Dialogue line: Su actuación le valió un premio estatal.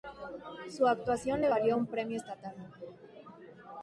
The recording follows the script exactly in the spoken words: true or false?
true